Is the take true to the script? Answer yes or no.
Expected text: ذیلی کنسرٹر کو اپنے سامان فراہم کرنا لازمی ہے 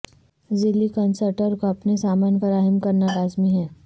yes